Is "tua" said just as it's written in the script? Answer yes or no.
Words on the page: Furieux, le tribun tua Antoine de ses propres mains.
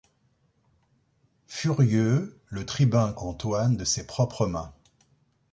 no